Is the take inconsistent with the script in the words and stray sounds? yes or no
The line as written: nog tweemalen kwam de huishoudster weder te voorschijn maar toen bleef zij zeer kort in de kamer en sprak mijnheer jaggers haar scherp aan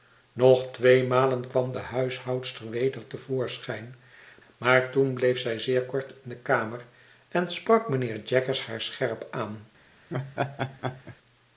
yes